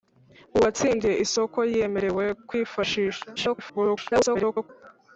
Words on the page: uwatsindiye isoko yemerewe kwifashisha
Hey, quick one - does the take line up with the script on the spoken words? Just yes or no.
no